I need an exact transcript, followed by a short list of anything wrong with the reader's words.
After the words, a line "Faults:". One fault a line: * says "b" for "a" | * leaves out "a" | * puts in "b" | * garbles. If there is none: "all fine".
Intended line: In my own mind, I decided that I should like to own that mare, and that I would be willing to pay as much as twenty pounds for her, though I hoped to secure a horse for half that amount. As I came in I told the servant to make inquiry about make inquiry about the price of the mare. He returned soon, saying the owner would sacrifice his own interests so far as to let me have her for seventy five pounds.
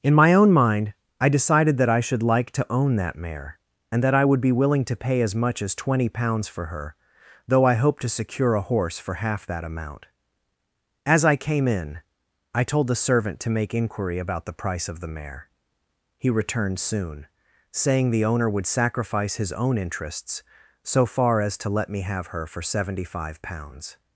In my own mind, I decided that I should like to own that mare, and that I would be willing to pay as much as twenty pounds for her, though I hoped to secure a horse for half that amount. As I came in I told the servant to make inquiry about the price of the mare. He returned soon, saying the owner would sacrifice his own interests so far as to let me have her for seventy five pounds.
Faults:
* leaves out "make inquiry about"